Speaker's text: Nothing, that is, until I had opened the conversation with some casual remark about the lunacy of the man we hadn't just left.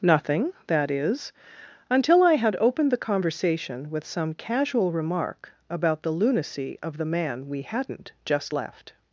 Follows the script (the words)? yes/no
yes